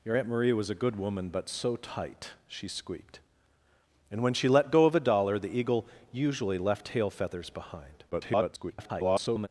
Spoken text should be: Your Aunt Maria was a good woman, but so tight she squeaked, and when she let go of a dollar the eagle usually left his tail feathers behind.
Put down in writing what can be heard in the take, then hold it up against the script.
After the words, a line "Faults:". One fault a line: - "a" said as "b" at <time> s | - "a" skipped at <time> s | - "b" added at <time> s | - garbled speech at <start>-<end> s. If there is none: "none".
Your Aunt Maria was a good woman, but so tight she squeaked, and when she let go of a dollar the eagle usually left tail feathers behind. [garbled]
Faults:
- "his" skipped at 6.9 s
- garbled speech at 8.1-9.5 s